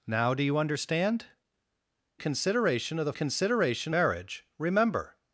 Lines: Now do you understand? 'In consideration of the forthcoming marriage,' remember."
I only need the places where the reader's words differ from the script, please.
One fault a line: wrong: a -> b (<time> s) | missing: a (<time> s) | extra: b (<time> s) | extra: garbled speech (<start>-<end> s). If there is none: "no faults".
missing: In (1.3 s)
wrong: forthcoming -> consideration (3.1 s)